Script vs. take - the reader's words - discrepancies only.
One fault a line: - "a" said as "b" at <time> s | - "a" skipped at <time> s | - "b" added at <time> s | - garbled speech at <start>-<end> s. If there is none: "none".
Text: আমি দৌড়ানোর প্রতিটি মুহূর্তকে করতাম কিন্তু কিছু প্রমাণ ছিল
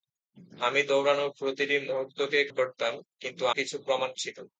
none